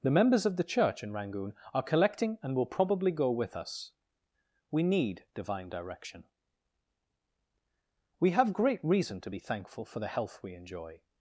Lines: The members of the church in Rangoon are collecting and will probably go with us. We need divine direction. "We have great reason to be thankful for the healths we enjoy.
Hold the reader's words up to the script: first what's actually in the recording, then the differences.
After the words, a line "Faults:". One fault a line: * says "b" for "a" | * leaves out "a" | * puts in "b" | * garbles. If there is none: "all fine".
The members of the church in Rangoon are collecting and will probably go with us. We need divine direction. "We have great reason to be thankful for the health we enjoy.
Faults:
* says "health" for "healths"